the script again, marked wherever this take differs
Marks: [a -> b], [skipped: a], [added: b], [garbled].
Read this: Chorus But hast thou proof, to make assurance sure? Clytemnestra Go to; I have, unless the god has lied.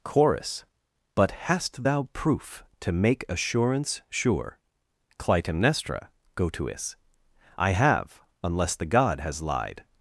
Chorus But hast thou proof, to make assurance sure? Clytemnestra Go to; [added: is] I have, unless the god has lied.